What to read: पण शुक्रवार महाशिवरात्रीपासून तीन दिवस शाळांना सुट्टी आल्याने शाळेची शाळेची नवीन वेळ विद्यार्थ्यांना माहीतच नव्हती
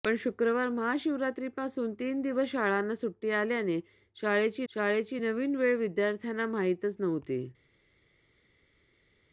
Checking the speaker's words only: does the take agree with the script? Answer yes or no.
yes